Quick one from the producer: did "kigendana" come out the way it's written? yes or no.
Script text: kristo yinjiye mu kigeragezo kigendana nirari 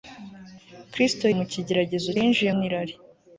no